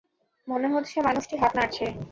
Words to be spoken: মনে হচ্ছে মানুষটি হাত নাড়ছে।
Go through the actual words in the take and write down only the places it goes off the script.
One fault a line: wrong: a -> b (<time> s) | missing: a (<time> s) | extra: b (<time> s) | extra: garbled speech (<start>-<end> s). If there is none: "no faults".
no faults